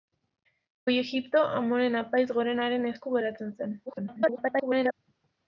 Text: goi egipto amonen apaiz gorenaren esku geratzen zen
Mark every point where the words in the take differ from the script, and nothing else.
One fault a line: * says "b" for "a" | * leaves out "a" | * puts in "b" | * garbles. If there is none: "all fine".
* garbles